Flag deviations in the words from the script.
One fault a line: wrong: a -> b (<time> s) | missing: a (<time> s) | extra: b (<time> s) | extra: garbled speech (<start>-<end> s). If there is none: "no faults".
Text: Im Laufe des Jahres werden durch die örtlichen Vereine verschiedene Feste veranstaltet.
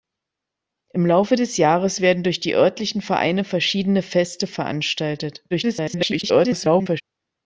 extra: garbled speech (5.5-7.0 s)